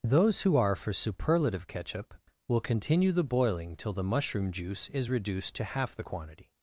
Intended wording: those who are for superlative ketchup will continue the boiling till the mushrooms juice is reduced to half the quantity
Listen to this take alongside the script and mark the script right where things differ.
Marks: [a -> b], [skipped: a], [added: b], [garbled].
those who are for superlative ketchup will continue the boiling till the [mushrooms -> mushroom] juice is reduced to half the quantity